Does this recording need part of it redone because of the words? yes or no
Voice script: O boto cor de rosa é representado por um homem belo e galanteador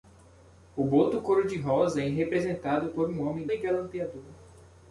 yes